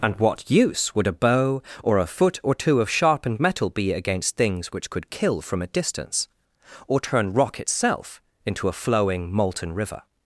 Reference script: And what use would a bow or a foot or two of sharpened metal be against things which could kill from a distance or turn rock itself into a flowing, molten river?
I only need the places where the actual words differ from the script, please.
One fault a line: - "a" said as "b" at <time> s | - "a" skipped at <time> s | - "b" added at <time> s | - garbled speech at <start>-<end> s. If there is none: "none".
none